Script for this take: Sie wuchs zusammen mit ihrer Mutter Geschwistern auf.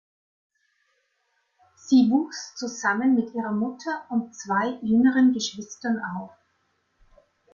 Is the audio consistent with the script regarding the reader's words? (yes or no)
no